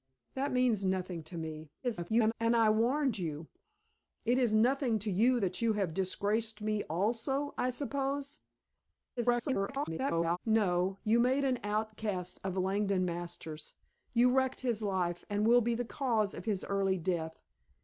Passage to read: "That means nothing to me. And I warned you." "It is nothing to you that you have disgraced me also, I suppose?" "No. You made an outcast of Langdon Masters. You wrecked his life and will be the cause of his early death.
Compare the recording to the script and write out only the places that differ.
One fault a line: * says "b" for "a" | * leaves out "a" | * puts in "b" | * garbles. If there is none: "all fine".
* garbles
* garbles